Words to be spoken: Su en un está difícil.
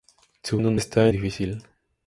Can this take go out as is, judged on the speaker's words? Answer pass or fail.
pass